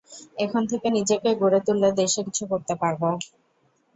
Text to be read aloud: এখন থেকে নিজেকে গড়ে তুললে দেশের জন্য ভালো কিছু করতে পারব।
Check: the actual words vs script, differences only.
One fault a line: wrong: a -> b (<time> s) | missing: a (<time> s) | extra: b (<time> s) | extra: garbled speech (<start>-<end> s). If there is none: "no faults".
missing: জন্য ভালো (2.2 s)